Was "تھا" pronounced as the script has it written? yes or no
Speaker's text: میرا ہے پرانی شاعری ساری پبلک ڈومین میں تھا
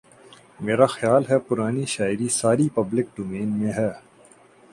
no